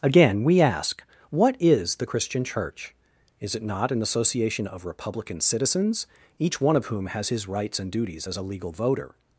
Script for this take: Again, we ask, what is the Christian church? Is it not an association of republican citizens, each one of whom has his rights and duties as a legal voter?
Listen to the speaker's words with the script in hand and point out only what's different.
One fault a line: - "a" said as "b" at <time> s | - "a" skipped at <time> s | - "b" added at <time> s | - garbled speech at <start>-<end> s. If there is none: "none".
none